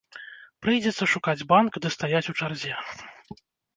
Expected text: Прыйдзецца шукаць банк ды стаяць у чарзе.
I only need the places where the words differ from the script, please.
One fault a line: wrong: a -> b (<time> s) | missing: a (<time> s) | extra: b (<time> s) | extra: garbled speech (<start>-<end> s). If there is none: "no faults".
no faults